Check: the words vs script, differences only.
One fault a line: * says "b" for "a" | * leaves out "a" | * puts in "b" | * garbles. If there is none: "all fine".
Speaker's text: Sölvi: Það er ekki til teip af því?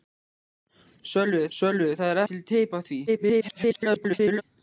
* puts in "sölvi"
* leaves out "ekki"
* garbles